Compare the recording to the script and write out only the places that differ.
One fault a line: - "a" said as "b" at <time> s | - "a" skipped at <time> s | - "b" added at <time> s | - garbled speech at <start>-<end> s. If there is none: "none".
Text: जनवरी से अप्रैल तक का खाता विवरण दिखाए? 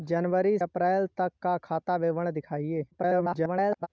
- "से" skipped at 0.6 s
- garbled speech at 2.9-3.9 s